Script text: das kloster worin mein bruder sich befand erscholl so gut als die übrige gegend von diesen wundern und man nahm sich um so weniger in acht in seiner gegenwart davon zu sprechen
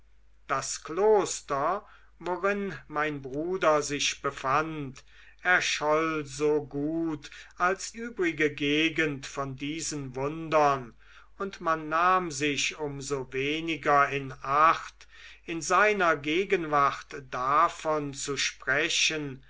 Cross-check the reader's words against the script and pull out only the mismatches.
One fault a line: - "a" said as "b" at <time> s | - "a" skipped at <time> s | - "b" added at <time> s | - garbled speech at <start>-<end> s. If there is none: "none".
- "die" skipped at 7.9 s